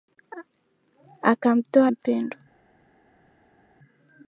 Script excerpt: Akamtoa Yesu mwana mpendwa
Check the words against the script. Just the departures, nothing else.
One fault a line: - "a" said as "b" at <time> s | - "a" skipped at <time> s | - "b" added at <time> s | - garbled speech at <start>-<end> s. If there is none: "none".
- "Yesu mwana" skipped at 1.9 s